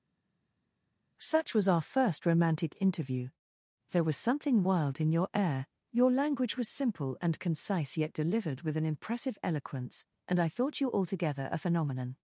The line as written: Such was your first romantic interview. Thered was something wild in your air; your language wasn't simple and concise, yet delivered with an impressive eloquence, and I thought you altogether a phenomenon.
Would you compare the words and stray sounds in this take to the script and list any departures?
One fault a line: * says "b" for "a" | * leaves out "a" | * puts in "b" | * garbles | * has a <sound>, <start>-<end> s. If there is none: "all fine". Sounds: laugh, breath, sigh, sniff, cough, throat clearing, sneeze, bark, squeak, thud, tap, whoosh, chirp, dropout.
* says "our" for "your"
* says "There" for "Thered"
* says "was" for "wasn't"